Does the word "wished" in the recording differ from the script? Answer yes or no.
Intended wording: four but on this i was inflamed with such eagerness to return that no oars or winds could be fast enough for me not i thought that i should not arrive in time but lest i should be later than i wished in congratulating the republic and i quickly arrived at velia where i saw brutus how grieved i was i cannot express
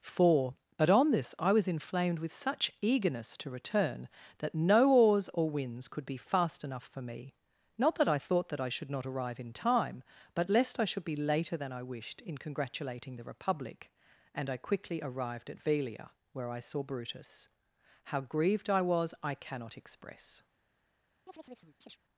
no